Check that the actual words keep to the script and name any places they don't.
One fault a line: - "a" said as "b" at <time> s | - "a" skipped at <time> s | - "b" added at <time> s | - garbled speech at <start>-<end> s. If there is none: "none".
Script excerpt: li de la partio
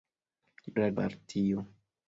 none